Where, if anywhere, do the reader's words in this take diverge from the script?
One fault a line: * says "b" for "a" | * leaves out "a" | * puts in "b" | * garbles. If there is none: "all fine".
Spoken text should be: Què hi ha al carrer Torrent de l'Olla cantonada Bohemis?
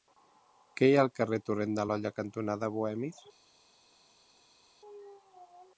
all fine